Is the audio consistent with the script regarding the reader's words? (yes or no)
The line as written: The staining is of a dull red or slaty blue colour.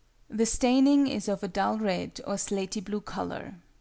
yes